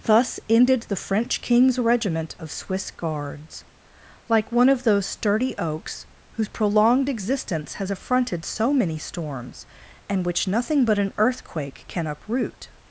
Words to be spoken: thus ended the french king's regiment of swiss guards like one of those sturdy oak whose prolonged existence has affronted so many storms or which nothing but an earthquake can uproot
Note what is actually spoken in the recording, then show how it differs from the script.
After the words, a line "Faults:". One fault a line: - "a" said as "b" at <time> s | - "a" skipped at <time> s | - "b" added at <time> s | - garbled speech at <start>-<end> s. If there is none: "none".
thus ended the french king's regiment of swiss guards like one of those sturdy oaks whose prolonged existence has affronted so many storms and which nothing but an earthquake can uproot
Faults:
- "oak" said as "oaks" at 5.6 s
- "or" said as "and" at 10.1 s